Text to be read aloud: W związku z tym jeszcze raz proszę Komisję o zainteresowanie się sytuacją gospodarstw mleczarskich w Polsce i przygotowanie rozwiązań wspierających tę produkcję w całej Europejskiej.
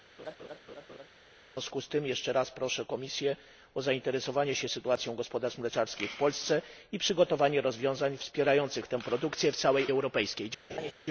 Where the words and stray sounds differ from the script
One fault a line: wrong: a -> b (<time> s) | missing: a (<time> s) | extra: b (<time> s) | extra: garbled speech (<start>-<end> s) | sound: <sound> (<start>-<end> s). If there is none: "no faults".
sound: laugh (0.2-1.1 s)
sound: laugh (10.7-10.9 s)